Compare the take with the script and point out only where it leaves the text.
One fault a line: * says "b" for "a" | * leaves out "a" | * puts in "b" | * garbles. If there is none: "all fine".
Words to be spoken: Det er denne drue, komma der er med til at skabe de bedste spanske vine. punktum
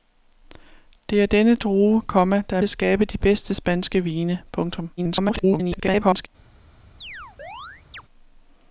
* leaves out "med til"
* garbles